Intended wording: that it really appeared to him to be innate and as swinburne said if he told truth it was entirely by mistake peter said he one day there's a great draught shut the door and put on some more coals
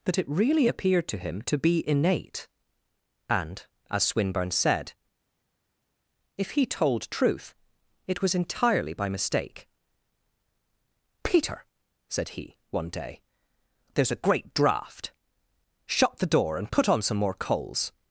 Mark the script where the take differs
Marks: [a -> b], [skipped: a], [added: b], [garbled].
that it really appeared to him to be innate and as swinburne said if he told truth it was entirely by mistake peter said he one day there's a great draught shut the door and put on some more coals